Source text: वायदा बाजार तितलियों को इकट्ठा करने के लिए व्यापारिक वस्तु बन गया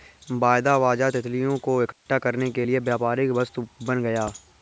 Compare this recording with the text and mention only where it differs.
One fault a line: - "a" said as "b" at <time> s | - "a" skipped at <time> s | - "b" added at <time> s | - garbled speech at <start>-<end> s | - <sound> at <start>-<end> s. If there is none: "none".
- dropout at 1.9-2.1 s